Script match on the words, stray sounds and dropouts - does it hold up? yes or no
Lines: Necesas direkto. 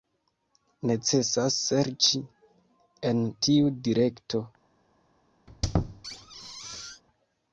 no